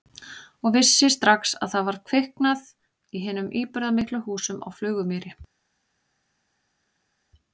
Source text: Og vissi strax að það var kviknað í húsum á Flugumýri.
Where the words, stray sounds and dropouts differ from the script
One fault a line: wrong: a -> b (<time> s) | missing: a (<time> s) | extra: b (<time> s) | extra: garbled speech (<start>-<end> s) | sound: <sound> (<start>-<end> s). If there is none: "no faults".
extra: hinum íburðarmiklu (3.3 s)